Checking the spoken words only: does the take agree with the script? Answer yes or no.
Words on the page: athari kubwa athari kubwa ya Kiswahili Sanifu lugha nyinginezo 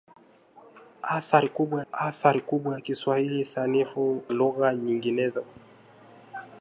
yes